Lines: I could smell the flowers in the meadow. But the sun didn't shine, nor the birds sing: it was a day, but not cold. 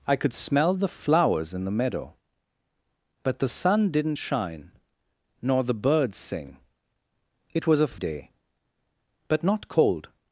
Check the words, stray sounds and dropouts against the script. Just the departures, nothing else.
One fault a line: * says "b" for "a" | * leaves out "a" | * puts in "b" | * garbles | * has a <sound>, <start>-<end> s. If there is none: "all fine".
all fine